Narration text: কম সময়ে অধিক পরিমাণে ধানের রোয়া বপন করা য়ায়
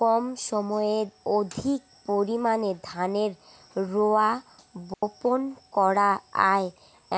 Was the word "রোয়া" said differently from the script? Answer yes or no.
no